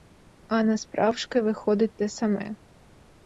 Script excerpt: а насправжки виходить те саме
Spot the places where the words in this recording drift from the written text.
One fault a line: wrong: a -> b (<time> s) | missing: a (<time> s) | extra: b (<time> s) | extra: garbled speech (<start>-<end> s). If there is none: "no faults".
no faults